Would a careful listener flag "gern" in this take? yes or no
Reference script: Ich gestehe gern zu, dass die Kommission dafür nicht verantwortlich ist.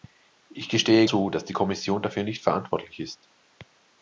yes